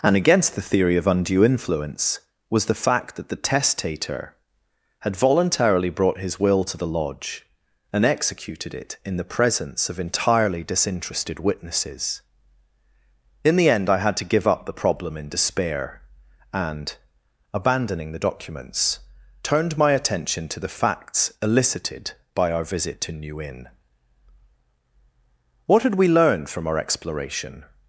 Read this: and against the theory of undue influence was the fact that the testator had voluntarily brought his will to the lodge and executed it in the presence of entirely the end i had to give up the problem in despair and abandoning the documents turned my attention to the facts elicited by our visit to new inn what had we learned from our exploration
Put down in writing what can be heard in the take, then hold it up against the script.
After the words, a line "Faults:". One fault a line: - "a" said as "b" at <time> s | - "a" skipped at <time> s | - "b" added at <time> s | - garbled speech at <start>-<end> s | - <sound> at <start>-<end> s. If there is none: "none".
and against the theory of undue influence was the fact that the testator had voluntarily brought his will to the lodge and executed it in the presence of entirely disinterested witnesses in the end i had to give up the problem in despair and abandoning the documents turned my attention to the facts elicited by our visit to new inn what had we learned from our exploration
Faults:
- "disinterested witnesses in" added at 10.6 s